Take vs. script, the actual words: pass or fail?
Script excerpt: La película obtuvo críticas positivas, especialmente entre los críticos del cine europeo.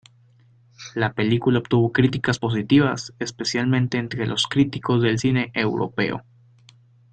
pass